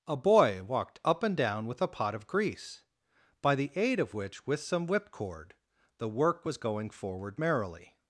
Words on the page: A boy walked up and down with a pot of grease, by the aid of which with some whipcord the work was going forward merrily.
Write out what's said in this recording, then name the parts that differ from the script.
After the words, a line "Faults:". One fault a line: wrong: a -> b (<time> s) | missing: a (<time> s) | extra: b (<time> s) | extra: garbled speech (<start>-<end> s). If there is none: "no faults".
A boy walked up and down with a pot of grease, by the aid of which with some whipcord the work was going forward merrily.
Faults:
no faults